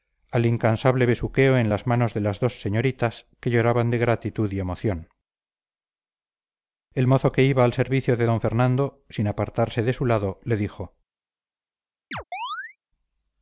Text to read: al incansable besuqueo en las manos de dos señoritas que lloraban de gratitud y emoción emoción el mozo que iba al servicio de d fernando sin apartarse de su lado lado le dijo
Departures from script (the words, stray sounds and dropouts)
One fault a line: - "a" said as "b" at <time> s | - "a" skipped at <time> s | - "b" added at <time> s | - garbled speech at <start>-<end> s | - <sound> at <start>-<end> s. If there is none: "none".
- "las" added at 2.2 s
- "emoción" skipped at 5.1 s
- "lado" skipped at 10.4 s
- chirp at 12.1-12.8 s